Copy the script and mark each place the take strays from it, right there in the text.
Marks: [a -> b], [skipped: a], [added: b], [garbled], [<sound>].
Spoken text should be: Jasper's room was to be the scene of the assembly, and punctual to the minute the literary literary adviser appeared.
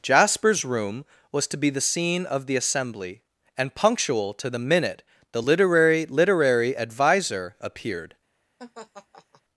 Jasper's room was to be the scene of the assembly, and punctual to the minute the literary literary adviser appeared. [laugh]